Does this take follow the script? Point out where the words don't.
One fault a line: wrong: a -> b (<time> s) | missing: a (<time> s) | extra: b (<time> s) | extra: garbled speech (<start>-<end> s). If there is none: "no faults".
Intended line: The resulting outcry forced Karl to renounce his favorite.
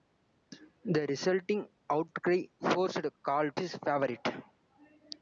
missing: to renounce (3.5 s)